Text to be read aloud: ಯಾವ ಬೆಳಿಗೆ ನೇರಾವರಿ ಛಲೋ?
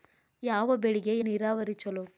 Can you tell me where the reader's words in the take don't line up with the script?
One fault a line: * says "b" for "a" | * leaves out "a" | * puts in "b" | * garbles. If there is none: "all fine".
all fine